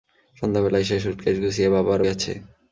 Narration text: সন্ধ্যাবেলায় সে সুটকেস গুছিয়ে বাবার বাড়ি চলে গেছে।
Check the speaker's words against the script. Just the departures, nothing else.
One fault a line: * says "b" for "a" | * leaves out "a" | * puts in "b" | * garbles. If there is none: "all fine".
* leaves out "বাড়ি চলে"